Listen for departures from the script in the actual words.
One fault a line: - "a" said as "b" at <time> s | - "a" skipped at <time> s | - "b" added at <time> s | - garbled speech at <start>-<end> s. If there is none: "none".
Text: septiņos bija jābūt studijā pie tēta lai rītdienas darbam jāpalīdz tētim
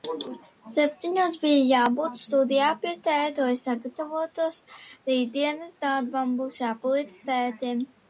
- "sagatavotos" added at 3.6 s
- "būs" added at 6.4 s